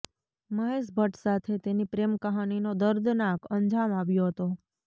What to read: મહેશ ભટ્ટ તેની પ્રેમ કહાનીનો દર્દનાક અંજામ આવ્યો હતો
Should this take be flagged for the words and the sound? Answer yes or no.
yes